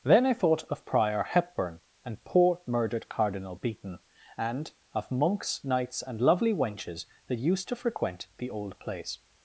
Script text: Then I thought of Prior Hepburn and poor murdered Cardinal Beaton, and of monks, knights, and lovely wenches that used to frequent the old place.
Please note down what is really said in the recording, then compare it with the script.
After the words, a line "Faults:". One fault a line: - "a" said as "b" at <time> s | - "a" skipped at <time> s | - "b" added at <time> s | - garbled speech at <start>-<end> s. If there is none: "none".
Then I thought of Prior Hepburn and poor murdered Cardinal Beaton, and of monks, knights, and lovely wenches that used to frequent the old place.
Faults:
none